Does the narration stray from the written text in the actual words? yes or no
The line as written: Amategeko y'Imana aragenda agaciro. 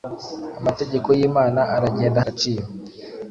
no